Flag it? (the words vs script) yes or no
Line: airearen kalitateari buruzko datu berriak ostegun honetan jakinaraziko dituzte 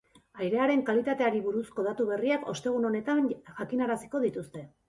no